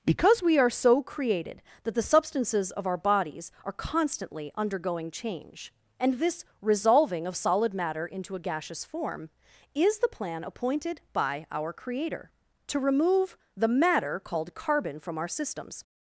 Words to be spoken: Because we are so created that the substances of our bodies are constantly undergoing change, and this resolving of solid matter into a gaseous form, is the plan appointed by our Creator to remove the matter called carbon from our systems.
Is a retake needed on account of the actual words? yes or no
no